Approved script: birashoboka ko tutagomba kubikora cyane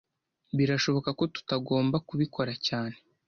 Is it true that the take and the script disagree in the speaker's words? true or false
false